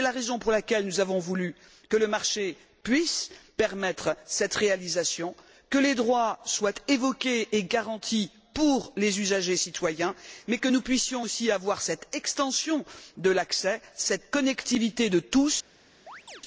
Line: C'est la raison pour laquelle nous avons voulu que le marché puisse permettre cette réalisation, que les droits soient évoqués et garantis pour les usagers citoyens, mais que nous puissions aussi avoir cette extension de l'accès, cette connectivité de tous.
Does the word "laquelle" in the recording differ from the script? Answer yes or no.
no